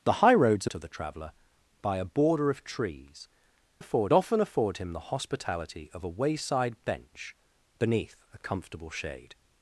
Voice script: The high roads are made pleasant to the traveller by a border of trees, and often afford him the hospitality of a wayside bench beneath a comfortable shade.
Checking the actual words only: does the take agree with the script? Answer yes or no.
no